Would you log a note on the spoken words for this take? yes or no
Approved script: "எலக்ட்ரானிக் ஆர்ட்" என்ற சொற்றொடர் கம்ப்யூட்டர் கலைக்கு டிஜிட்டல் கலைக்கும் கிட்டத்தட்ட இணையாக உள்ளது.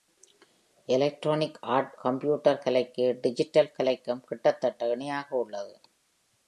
yes